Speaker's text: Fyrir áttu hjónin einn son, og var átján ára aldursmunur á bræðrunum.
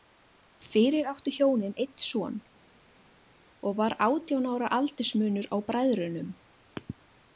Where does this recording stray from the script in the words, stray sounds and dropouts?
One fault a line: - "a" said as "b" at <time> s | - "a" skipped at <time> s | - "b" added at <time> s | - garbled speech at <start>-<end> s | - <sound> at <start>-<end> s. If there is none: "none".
none